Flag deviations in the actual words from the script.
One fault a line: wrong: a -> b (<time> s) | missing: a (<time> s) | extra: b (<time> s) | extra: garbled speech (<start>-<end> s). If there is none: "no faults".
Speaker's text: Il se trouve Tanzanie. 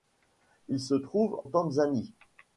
no faults